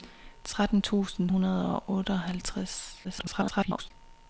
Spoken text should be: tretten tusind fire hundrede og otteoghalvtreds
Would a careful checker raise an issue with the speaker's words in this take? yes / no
yes